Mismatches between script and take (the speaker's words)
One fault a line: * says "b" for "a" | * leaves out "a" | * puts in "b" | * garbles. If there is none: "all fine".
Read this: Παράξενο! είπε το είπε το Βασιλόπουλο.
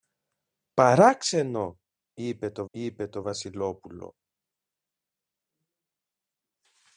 all fine